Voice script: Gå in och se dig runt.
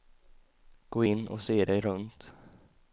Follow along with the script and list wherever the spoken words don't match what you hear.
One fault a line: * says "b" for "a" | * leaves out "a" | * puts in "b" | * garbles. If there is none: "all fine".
all fine